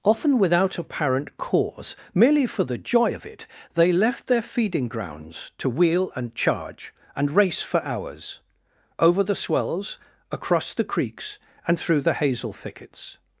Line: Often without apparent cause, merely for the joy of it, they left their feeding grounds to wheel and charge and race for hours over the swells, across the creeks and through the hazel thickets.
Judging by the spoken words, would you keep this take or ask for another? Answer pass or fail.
pass